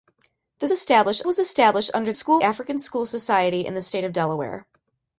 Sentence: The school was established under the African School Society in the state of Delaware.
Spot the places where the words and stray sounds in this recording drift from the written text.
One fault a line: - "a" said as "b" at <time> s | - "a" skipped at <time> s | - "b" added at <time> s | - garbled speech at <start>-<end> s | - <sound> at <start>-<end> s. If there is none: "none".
- "school" said as "established" at 0.7 s
- "the" said as "school" at 2.1 s